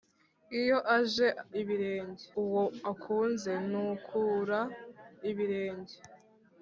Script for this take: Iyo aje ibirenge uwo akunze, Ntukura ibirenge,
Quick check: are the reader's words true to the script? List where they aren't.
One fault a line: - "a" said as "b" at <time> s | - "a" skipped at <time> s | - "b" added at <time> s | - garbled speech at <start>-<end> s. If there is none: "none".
none